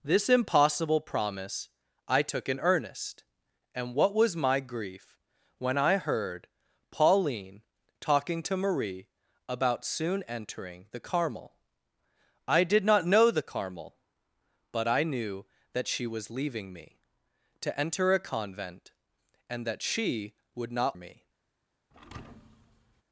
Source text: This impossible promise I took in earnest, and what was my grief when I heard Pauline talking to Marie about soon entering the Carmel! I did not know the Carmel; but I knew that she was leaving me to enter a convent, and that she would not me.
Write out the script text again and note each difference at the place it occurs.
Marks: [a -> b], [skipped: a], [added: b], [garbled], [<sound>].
This impossible promise I took in earnest, and what was my grief when I heard Pauline talking to Marie about soon entering the Carmel! I did not know the Carmel; but I knew that she was leaving me to enter a convent, and that she would not me. [thud]